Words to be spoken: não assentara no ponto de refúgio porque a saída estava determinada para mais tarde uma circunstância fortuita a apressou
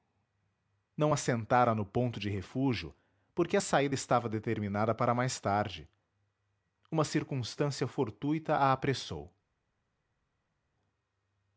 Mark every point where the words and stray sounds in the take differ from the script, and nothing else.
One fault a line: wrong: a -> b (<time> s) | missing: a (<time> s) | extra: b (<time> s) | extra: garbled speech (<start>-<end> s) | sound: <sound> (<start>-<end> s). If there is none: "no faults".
no faults